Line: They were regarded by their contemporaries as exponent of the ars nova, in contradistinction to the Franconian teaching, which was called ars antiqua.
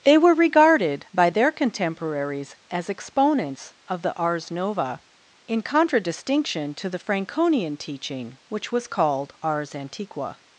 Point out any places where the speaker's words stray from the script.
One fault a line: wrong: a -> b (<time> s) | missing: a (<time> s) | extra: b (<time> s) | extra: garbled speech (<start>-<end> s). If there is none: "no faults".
wrong: exponent -> exponents (2.9 s)